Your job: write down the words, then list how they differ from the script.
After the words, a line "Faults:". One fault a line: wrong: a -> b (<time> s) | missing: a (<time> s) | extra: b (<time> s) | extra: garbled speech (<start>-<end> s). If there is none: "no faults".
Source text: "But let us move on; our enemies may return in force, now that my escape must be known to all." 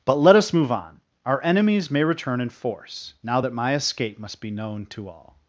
"But let us move on; our enemies may return in force, now that my escape must be known to all."
Faults:
no faults